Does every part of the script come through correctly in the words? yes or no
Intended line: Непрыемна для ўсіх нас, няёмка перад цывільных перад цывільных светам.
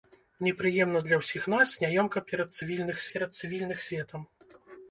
yes